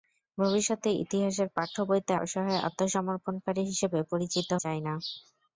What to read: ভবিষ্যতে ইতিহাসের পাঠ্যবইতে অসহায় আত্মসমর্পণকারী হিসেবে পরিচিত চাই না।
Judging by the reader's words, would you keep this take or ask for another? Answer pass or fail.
pass